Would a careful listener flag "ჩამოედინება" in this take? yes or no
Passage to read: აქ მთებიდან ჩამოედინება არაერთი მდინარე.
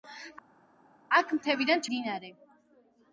yes